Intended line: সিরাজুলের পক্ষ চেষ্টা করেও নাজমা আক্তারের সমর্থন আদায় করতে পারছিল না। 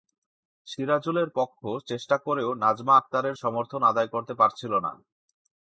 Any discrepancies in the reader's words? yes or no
no